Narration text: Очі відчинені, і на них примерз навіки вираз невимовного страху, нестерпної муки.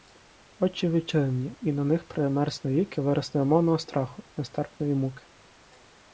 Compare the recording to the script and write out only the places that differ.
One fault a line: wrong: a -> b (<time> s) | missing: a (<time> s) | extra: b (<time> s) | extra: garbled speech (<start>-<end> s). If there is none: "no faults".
no faults